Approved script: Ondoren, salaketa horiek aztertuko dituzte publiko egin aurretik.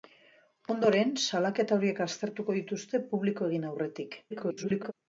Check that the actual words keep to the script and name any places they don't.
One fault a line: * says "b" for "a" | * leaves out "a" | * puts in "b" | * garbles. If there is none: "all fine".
* garbles